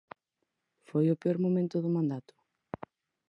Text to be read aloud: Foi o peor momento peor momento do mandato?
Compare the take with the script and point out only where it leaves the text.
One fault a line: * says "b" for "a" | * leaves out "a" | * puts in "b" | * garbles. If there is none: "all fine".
* leaves out "peor momento"